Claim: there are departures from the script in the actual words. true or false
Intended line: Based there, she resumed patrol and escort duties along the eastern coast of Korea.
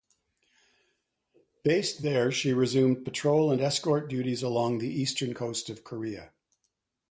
false